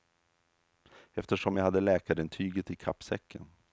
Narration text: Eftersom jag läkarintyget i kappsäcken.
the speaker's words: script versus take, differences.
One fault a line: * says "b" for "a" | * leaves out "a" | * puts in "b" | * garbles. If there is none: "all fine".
* puts in "hade"